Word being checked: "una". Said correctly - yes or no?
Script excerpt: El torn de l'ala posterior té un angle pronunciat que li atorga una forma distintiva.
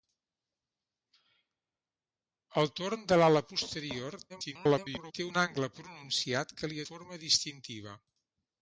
no